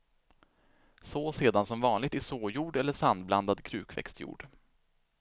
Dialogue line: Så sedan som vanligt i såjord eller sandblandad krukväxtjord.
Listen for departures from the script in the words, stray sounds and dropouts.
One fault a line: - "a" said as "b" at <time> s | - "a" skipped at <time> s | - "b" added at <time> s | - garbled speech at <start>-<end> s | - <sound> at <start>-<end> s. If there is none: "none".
none